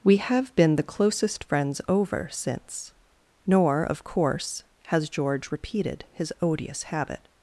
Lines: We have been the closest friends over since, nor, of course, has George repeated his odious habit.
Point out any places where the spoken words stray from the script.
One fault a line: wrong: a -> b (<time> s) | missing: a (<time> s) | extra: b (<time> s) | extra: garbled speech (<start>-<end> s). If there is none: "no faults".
no faults